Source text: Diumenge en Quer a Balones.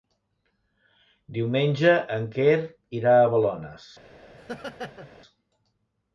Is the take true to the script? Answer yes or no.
no